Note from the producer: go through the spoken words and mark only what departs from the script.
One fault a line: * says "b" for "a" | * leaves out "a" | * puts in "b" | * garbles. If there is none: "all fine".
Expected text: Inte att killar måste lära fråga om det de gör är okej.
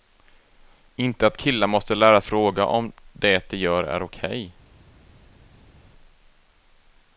all fine